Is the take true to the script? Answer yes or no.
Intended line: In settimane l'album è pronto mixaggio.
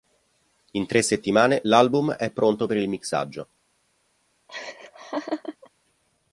no